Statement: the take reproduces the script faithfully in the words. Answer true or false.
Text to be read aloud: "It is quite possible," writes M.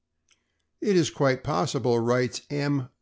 true